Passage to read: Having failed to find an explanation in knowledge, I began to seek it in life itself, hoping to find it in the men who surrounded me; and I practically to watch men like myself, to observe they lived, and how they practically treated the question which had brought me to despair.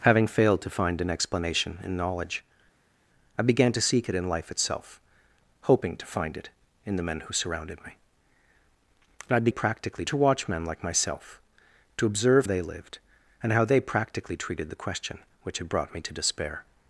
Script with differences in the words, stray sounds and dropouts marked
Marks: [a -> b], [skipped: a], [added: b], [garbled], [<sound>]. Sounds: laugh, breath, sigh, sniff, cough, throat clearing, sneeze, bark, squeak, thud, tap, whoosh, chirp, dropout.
Having failed to find an explanation in knowledge, I began to seek it in life itself, hoping to find it in the men who surrounded me; and I practically to watch men like myself, to observe they lived, and how they practically treated the question which had brought me to despair.